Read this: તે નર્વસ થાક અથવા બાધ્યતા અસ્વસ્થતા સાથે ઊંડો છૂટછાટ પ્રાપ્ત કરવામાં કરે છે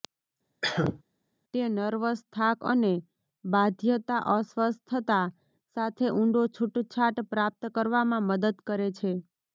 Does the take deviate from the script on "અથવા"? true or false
true